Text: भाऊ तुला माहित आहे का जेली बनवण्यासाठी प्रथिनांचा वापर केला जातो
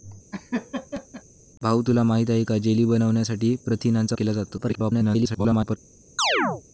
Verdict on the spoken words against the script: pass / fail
fail